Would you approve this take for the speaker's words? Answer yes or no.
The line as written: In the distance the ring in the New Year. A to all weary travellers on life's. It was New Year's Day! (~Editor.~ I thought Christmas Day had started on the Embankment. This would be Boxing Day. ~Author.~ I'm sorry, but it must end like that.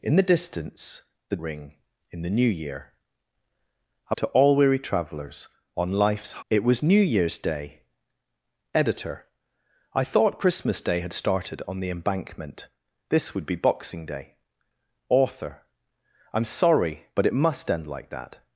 yes